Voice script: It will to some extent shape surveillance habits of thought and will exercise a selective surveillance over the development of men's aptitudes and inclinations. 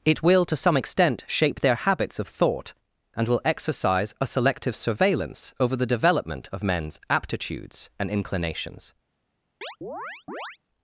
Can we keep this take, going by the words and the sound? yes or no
no